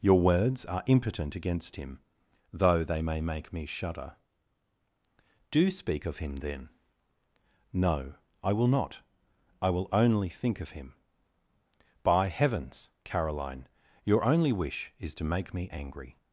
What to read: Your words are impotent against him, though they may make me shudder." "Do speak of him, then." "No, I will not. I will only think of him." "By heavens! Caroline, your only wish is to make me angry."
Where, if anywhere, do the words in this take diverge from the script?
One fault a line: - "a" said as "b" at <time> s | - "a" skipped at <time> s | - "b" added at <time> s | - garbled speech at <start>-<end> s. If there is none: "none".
none